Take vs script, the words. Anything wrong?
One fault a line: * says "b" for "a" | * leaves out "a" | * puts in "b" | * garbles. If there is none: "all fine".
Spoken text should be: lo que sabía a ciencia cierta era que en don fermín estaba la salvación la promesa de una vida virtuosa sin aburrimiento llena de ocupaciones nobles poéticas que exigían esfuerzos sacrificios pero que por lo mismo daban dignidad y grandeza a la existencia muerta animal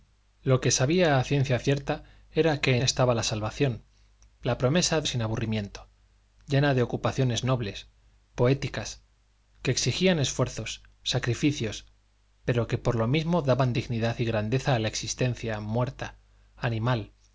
* leaves out "en don fermín"
* leaves out "una vida virtuosa"